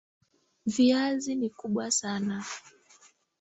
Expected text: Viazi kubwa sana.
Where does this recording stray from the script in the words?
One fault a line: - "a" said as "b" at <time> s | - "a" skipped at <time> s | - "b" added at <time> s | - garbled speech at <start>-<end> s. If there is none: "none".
- "ni" added at 1.4 s